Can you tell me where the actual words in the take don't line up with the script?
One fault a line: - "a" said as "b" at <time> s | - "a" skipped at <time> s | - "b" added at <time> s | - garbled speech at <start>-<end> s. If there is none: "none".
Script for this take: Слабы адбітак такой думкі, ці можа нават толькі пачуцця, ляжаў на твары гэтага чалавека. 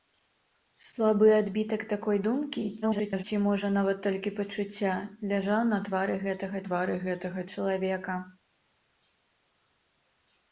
- garbled speech at 2.8-3.2 s
- "твары гэтага" added at 6.7 s